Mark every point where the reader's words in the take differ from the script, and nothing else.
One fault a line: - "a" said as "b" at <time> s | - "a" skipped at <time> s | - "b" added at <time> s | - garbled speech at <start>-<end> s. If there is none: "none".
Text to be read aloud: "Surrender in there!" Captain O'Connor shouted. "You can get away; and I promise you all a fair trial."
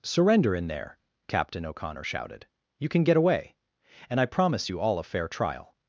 none